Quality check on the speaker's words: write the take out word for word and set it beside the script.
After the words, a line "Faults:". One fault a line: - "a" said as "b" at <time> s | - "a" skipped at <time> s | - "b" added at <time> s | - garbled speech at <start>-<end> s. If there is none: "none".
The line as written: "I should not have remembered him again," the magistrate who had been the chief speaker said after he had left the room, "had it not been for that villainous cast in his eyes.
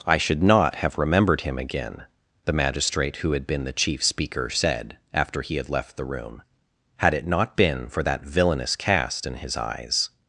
"I should not have remembered him again," the magistrate who had been the chief speaker said after he had left the room, "had it not been for that villainous cast in his eyes.
Faults:
none